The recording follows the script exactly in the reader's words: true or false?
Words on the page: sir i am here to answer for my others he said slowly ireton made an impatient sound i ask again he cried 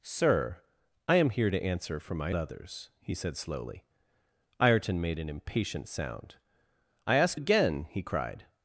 true